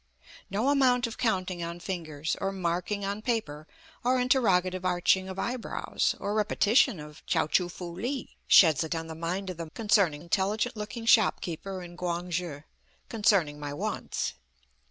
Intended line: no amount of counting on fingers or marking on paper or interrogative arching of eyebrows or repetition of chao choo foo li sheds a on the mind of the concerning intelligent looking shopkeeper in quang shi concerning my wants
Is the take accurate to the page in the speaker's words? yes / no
yes